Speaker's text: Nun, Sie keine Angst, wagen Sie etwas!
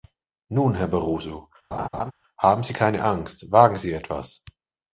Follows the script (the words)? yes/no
no